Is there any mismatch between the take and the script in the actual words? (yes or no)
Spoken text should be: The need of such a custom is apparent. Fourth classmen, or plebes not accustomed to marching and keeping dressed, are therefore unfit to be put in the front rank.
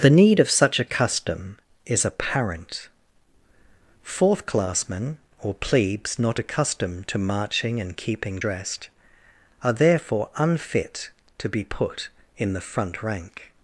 no